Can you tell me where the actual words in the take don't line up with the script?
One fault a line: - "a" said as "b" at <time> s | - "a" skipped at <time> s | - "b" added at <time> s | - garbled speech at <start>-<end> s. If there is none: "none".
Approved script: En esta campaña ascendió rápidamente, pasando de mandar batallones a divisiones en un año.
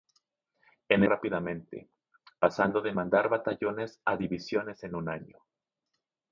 - "esta campaña ascendió" skipped at 1.0 s